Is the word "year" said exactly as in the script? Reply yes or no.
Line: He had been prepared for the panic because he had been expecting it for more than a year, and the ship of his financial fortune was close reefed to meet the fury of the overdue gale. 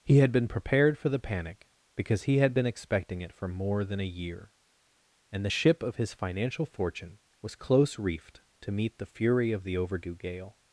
yes